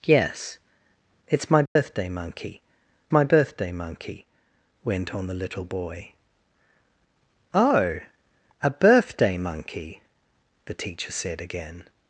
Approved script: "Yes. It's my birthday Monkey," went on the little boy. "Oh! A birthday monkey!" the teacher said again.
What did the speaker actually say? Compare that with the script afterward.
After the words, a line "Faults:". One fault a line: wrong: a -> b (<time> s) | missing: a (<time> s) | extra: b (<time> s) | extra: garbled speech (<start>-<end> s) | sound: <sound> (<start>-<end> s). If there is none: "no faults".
"Yes. It's my birthday Monkey my birthday Monkey," went on the little boy. "Oh! A birthday monkey!" the teacher said again.
Faults:
sound: dropout (1.7-1.8 s)
extra: my birthday Monkey (3.1 s)